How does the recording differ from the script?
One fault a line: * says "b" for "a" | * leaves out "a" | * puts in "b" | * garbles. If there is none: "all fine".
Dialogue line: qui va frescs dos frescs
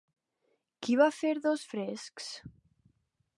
* says "fer" for "frescs"